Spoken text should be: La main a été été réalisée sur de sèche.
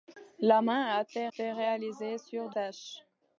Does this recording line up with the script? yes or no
yes